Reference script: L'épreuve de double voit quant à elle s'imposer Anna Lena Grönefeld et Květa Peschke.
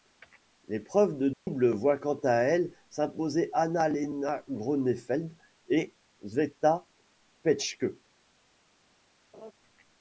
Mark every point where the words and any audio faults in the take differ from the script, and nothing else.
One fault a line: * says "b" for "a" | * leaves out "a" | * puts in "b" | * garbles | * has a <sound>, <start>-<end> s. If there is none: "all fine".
* has a dropout, 1.3-1.5 s
* has a laugh, 9.3-9.5 s